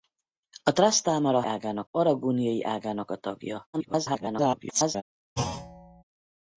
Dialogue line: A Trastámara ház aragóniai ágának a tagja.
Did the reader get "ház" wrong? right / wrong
wrong